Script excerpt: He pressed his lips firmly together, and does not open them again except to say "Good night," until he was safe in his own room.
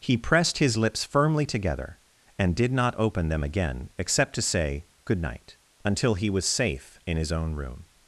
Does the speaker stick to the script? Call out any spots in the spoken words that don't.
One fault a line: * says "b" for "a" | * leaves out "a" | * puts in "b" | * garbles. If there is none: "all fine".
* says "did" for "does"